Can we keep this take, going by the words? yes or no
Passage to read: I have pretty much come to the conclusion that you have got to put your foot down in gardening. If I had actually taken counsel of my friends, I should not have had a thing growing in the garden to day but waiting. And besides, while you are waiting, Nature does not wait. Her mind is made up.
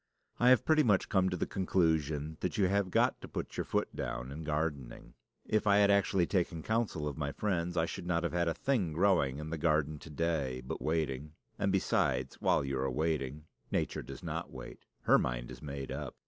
yes